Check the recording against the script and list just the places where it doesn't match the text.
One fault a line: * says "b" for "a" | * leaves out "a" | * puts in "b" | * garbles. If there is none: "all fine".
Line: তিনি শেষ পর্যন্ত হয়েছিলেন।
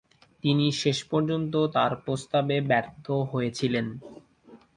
* puts in "তার প্রস্তাবে ব্যর্থ"